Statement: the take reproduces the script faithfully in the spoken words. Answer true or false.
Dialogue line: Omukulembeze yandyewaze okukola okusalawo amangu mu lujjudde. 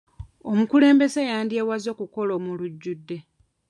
false